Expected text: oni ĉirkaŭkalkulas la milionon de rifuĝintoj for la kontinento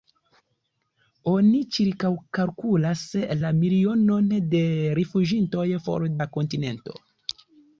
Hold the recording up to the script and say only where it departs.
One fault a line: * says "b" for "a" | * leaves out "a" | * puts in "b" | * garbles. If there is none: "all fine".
all fine